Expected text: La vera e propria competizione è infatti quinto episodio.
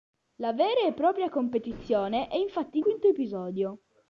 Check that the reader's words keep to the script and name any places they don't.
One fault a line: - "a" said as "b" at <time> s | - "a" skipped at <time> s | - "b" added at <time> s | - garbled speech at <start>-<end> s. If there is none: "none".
none